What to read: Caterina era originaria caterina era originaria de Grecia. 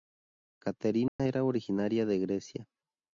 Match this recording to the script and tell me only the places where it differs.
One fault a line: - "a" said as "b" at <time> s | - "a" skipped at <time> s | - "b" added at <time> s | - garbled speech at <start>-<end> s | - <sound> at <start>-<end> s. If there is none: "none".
- dropout at 1.1-1.2 s
- "caterina era originaria" skipped at 2.1 s